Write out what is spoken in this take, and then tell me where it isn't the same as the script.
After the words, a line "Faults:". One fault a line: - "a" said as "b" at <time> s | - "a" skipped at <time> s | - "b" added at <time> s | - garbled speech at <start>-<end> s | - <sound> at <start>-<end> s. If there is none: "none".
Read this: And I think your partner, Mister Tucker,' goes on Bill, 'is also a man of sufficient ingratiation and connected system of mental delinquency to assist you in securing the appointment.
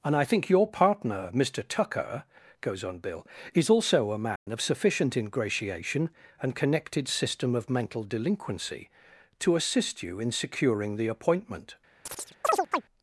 And I think your partner, Mister Tucker,' goes on Bill, 'is also a man of sufficient ingratiation and connected system of mental delinquency to assist you in securing the appointment.
Faults:
- dropout at 4.4-4.5 s
- chirp at 12.1-12.8 s